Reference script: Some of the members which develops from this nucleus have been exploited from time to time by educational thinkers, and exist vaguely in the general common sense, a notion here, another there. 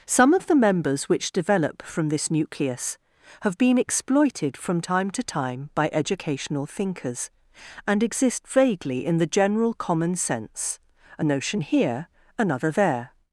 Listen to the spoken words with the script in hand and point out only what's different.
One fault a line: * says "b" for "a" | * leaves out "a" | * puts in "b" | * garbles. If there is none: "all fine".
* says "develop" for "develops"